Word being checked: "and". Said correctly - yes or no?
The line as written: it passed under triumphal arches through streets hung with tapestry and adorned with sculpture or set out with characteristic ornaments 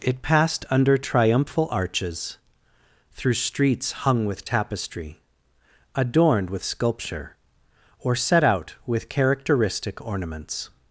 no